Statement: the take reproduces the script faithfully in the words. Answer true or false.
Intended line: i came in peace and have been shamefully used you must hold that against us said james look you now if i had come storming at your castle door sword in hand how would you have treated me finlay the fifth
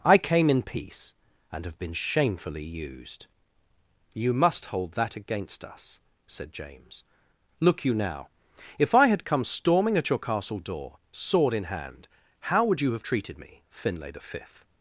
true